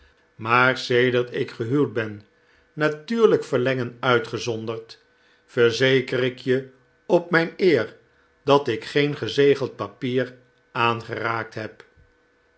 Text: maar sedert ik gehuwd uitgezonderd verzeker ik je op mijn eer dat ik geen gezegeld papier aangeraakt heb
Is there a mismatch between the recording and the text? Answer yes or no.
yes